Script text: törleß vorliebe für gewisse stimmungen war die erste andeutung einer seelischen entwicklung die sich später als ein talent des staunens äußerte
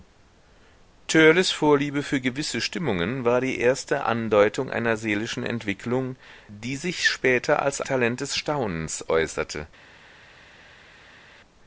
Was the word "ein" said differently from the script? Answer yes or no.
yes